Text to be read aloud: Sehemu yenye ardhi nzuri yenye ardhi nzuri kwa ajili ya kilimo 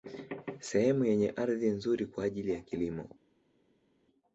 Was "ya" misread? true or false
false